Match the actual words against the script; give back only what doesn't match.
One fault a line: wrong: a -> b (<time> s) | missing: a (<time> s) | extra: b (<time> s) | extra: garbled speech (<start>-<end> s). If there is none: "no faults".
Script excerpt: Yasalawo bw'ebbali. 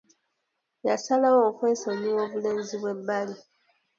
extra: okwesonyiwa obulenzi (1.5 s)